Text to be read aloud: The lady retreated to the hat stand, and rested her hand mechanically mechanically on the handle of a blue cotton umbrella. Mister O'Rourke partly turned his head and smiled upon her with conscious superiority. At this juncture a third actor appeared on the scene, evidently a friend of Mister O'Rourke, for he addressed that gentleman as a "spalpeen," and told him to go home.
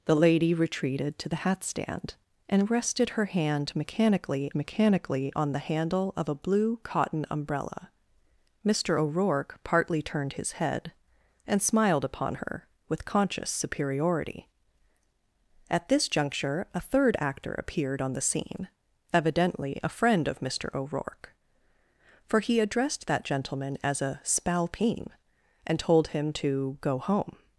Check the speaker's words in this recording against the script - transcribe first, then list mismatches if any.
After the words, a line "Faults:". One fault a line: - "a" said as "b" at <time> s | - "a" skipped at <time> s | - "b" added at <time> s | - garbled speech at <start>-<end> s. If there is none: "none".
The lady retreated to the hat stand, and rested her hand mechanically mechanically on the handle of a blue cotton umbrella. Mister O'Rourke partly turned his head and smiled upon her with conscious superiority. At this juncture a third actor appeared on the scene, evidently a friend of Mister O'Rourke, for he addressed that gentleman as a "spalpeen," and told him to go home.
Faults:
none